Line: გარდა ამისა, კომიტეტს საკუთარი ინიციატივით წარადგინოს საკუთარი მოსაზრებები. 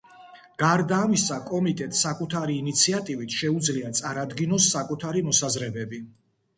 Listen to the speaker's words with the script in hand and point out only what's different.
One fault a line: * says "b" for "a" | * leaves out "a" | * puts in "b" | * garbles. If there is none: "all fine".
* puts in "შეუძლია"